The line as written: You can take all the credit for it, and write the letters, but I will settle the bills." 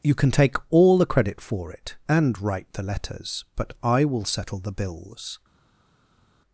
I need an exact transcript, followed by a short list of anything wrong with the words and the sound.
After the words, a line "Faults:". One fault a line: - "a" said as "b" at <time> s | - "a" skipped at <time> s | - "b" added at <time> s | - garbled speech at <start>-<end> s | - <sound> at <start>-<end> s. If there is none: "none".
You can take all the credit for it, and write the letters, but I will settle the bills."
Faults:
none